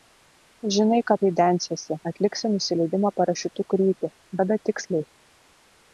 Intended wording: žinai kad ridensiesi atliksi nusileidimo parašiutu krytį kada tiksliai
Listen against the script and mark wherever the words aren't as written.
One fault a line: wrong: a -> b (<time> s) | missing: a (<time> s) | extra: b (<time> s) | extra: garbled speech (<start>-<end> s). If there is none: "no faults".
no faults